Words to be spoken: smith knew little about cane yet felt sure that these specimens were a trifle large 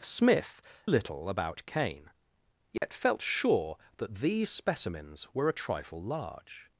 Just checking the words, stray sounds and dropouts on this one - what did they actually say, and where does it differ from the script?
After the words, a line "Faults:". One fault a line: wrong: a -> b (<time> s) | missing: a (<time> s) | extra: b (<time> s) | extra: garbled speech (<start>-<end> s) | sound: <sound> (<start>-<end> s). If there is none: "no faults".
smith little about cane yet felt sure that these specimens were a trifle large
Faults:
missing: knew (0.6 s)
sound: dropout (2.8-2.8 s)